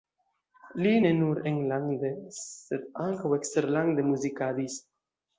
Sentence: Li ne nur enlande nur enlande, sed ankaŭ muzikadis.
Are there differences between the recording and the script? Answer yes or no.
yes